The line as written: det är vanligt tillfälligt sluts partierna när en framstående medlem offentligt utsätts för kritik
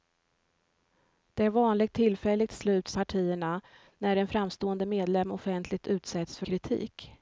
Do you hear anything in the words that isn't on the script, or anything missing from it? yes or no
no